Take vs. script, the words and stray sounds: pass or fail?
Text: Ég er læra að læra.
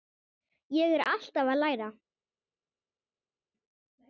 fail